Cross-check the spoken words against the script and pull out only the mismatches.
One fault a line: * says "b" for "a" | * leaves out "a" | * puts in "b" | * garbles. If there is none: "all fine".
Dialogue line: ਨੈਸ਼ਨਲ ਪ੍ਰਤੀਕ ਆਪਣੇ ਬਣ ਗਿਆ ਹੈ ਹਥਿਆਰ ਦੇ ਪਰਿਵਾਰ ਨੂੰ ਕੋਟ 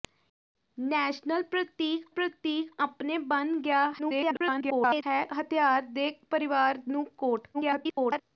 * puts in "ਪ੍ਰਤੀਕ"
* garbles
* garbles